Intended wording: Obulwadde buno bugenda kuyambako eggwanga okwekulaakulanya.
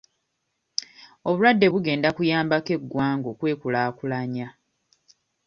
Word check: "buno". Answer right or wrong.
wrong